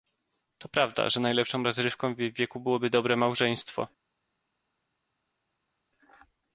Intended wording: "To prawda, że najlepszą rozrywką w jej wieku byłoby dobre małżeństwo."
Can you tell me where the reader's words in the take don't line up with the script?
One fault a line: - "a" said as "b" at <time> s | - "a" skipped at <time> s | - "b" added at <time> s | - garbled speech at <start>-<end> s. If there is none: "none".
none